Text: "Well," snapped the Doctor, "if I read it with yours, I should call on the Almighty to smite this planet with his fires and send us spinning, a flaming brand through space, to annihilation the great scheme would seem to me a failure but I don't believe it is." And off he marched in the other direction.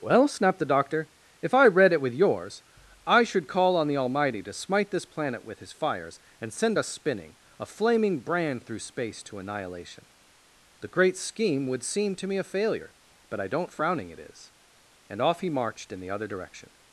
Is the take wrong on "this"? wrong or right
right